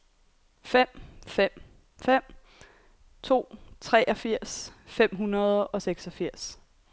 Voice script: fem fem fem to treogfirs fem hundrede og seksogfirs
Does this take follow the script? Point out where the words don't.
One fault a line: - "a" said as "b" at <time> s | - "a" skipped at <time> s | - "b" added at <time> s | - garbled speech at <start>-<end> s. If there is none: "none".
none